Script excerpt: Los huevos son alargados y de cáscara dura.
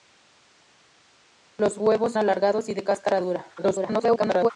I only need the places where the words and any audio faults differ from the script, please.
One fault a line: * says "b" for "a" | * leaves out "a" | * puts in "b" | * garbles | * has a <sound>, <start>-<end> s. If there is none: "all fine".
* leaves out "son"
* garbles